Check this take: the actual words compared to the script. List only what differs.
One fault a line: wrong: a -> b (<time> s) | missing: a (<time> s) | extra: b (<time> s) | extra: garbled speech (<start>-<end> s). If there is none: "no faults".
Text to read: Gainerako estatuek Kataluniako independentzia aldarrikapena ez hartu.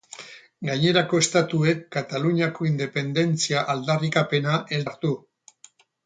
no faults